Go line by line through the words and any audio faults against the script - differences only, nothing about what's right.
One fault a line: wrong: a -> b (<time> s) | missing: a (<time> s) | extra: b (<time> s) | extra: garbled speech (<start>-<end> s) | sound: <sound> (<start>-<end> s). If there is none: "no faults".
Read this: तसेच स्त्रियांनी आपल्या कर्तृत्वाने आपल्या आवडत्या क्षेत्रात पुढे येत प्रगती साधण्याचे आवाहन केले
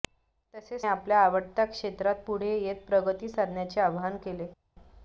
missing: स्त्रियांनी आपल्या कर्तृत्वाने (0.8 s)